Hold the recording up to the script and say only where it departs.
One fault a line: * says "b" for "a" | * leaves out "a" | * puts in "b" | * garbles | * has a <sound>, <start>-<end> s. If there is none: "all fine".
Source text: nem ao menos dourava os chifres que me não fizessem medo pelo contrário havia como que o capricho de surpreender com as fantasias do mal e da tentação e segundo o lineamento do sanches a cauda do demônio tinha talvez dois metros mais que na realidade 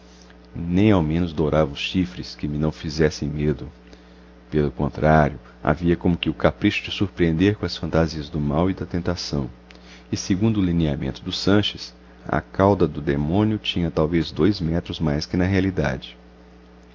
all fine